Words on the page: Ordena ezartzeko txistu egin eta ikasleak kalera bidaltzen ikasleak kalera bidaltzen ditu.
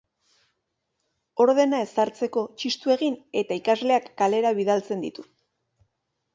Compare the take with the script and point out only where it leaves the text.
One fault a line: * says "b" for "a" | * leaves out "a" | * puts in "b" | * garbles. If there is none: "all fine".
* leaves out "ikasleak kalera bidaltzen"